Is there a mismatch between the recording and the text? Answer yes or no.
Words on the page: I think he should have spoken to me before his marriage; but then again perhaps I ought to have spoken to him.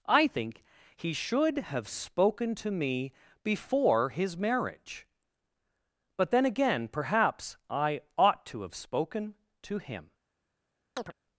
no